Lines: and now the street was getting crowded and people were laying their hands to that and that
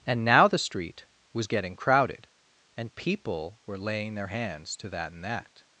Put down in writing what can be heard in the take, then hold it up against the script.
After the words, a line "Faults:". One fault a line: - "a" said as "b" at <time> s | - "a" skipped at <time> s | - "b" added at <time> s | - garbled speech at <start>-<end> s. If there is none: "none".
and now the street was getting crowded and people were laying their hands to that and that
Faults:
none